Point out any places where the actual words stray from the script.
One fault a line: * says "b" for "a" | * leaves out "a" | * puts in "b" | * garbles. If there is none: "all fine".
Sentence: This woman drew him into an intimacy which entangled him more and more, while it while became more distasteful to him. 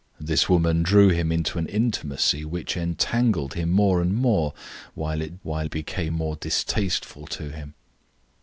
all fine